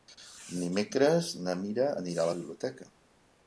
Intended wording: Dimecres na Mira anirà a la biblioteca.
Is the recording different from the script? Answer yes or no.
no